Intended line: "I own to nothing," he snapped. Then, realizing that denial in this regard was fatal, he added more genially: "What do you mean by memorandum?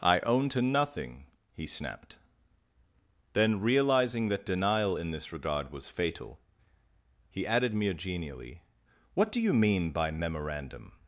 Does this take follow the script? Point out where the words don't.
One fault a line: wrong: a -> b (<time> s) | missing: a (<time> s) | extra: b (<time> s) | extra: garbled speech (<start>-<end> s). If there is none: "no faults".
wrong: more -> mere (7.7 s)